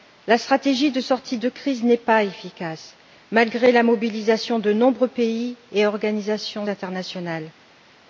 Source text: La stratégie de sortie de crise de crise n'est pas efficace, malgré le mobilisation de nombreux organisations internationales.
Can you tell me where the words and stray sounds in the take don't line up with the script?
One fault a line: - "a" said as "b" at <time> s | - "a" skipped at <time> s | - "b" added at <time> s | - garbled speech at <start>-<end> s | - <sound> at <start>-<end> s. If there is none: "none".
- "de crise" skipped at 1.8 s
- "le" said as "la" at 3.7 s
- "pays et" added at 5.1 s